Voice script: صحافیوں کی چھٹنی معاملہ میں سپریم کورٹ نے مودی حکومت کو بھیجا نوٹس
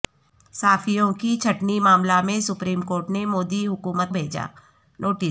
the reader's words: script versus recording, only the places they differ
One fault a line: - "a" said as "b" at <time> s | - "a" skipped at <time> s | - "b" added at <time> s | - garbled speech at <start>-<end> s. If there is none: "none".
- "کو" skipped at 4.1 s